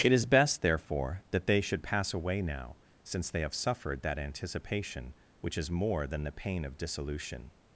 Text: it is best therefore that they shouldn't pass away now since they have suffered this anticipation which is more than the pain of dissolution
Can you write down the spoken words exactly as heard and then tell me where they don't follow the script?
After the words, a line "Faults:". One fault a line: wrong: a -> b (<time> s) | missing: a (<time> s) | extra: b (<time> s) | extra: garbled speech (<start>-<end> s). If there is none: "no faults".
it is best therefore that they should pass away now since they have suffered that anticipation which is more than the pain of dissolution
Faults:
wrong: shouldn't -> should (1.6 s)
wrong: this -> that (4.0 s)